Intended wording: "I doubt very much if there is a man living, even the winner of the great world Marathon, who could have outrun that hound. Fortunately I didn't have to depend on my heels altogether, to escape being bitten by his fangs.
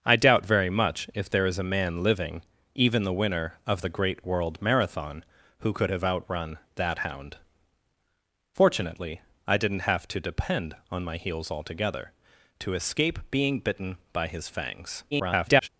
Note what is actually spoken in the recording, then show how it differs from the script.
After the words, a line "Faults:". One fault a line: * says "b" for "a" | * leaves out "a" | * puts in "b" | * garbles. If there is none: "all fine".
"I doubt very much if there is a man living, even the winner of the great world Marathon, who could have outrun that hound. Fortunately I didn't have to depend on my heels altogether, to escape being bitten by his fangs. [garbled]
Faults:
* garbles